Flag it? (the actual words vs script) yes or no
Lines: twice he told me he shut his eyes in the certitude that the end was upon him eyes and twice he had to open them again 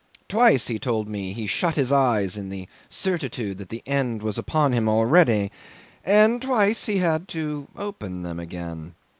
yes